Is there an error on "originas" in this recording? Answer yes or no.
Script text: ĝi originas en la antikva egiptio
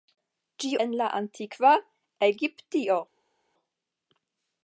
yes